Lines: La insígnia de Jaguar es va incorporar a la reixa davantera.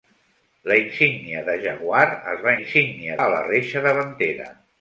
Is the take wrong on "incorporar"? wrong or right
wrong